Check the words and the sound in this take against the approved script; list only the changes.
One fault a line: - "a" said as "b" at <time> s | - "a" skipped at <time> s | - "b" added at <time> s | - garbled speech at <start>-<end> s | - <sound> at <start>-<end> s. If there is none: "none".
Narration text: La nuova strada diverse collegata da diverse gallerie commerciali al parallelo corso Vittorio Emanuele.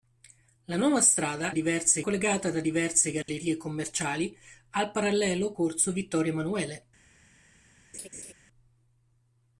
- dropout at 3.2-3.3 s
- laugh at 7.9-8.3 s